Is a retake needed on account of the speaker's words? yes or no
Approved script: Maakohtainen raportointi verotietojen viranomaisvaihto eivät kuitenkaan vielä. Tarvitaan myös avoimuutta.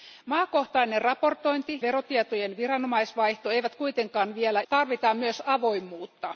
no